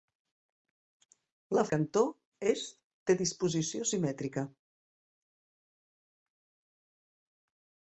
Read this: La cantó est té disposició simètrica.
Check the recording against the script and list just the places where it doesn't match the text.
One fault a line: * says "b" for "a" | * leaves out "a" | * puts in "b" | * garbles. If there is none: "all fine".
all fine